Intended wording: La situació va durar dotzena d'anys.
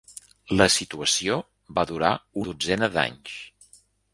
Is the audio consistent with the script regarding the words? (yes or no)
yes